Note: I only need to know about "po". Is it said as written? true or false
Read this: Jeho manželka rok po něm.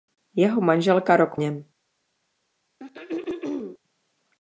false